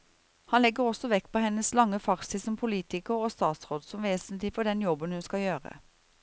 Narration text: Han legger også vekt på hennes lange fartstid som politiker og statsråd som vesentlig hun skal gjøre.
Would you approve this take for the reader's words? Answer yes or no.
no